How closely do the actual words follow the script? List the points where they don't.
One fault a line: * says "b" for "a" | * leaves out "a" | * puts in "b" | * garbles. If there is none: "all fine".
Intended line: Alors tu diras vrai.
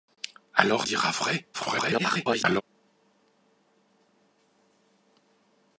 * leaves out "tu"
* garbles